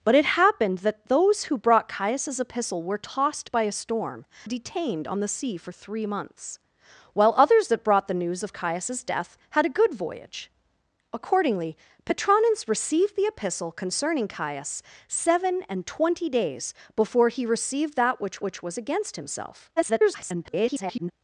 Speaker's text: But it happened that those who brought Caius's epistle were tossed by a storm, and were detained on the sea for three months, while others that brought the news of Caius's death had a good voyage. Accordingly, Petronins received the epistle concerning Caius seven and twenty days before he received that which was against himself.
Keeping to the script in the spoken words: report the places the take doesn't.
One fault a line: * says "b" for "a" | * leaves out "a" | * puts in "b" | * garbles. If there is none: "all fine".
* leaves out "and were"
* puts in "which"
* garbles